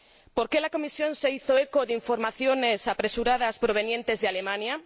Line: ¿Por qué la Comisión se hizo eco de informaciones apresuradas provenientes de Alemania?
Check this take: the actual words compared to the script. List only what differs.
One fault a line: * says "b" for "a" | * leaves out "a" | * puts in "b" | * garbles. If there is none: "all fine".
all fine